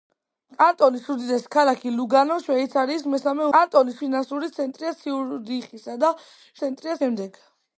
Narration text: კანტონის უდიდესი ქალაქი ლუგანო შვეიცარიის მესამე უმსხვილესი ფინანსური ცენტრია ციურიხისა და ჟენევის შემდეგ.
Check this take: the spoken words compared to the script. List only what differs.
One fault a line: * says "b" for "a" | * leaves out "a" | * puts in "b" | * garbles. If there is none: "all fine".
* says "კანტონის" for "უმსხვილესი"
* says "ცენტრია" for "ჟენევის"